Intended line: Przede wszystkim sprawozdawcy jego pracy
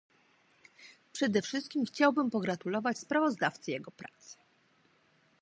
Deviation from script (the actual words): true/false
true